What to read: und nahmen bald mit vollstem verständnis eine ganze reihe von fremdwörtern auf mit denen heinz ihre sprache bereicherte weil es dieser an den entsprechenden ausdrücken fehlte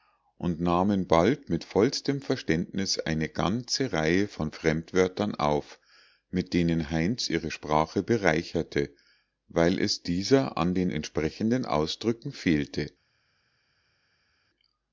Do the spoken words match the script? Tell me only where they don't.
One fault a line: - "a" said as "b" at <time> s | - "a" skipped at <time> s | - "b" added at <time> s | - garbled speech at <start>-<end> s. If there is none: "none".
none